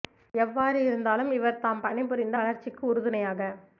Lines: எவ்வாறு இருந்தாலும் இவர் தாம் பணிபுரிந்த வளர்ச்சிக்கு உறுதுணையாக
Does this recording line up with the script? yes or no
yes